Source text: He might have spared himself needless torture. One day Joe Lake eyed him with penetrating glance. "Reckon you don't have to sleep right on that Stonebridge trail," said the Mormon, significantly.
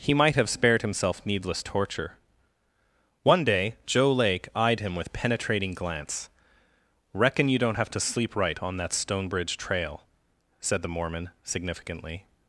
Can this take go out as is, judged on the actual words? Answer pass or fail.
pass